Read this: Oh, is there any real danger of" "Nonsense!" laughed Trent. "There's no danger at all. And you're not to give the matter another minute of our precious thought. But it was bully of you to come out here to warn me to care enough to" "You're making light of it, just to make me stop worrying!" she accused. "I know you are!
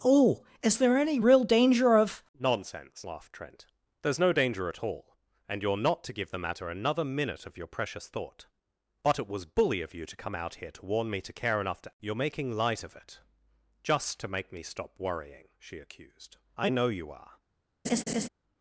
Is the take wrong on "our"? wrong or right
wrong